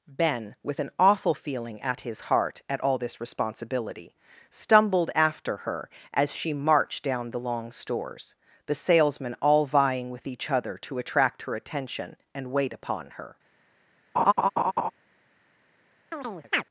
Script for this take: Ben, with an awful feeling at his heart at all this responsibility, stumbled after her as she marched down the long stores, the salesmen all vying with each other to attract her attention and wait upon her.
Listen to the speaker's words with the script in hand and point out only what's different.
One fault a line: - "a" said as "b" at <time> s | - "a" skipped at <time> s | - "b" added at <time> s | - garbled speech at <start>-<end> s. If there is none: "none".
none